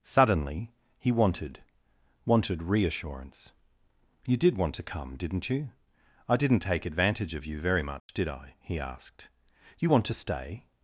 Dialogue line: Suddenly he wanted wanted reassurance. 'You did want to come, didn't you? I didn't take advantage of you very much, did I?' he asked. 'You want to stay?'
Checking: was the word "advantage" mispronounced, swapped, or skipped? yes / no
no